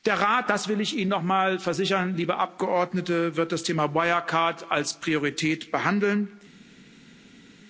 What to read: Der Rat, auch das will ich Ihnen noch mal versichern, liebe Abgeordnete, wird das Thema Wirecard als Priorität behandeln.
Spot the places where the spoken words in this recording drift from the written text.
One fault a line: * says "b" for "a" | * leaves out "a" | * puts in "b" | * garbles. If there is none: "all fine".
* leaves out "auch"